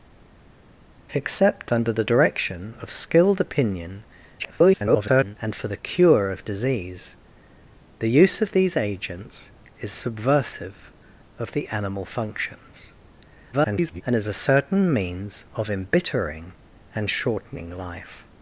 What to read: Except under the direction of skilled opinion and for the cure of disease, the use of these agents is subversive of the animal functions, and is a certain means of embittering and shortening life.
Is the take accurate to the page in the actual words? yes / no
no